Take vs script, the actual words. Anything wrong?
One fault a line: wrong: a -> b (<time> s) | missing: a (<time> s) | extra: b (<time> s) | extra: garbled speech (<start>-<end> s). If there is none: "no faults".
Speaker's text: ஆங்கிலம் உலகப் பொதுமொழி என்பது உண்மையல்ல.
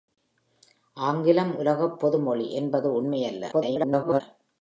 extra: garbled speech (3.5-4.2 s)